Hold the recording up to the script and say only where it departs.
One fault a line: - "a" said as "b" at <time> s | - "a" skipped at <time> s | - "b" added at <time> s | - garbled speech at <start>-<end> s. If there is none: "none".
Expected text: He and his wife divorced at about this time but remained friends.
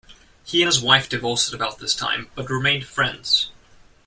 none